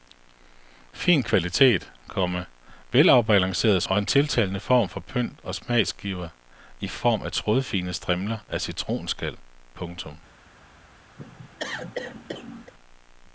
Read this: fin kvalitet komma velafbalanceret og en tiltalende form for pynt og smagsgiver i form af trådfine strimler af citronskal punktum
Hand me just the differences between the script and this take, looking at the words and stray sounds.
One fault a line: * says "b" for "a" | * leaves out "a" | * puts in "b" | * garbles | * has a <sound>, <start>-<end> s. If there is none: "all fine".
* has a cough, 11.2-12.7 s